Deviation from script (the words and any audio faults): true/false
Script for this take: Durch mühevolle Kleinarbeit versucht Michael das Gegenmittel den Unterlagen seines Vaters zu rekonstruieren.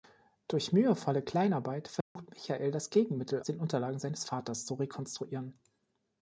true